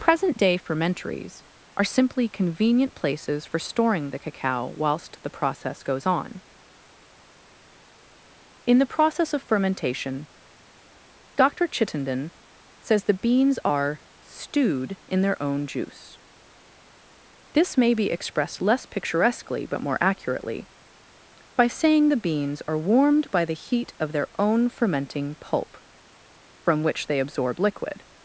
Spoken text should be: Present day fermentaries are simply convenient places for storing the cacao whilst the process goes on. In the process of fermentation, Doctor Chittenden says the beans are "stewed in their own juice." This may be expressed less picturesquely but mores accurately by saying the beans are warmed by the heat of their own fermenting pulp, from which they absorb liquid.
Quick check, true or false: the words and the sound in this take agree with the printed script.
false